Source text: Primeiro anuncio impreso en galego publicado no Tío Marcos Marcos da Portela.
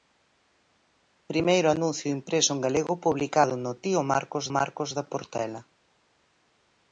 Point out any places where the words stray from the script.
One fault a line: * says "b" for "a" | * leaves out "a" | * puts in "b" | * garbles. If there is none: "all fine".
all fine